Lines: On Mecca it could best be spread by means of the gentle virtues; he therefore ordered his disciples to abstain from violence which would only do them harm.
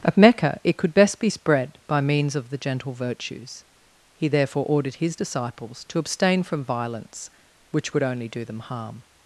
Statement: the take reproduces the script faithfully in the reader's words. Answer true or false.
false